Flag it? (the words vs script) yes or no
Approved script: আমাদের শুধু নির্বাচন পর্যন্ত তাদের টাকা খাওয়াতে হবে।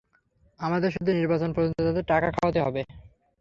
no